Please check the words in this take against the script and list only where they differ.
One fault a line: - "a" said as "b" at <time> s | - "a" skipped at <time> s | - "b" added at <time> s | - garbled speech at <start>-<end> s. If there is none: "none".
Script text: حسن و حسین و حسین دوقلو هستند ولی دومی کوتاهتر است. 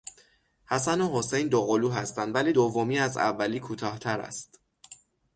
- "و حسین" skipped at 1.5 s
- "از اولی" added at 3.0 s